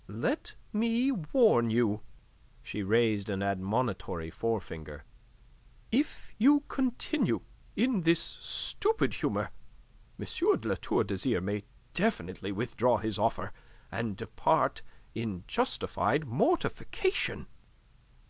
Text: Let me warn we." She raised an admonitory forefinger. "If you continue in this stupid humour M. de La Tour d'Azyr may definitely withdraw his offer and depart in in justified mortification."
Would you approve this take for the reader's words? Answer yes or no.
no